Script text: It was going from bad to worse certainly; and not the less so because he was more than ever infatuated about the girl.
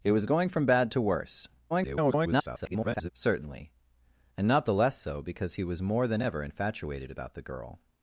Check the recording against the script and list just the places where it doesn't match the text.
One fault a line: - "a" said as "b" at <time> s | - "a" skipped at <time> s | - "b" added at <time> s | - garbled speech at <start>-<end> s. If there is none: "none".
- garbled speech at 1.7-3.1 s